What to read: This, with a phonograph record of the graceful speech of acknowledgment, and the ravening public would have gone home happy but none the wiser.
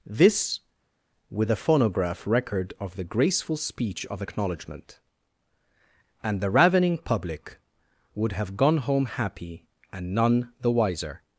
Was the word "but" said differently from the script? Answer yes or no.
yes